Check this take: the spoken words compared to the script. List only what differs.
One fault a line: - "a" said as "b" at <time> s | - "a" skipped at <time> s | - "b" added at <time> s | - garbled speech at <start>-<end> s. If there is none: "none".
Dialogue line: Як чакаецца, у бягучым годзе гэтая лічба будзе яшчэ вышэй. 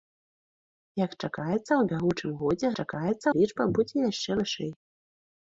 - "гэтая" said as "чакаецца" at 2.8 s